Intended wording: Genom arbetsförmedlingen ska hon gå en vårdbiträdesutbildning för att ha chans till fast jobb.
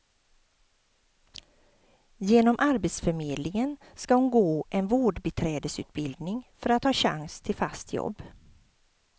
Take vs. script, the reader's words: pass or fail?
pass